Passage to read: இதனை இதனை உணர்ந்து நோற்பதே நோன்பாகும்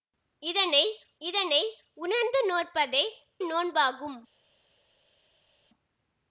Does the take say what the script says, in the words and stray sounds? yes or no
yes